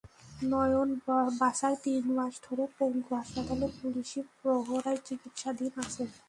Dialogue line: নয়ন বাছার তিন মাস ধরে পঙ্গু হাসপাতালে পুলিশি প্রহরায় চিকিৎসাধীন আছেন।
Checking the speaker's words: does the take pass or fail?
pass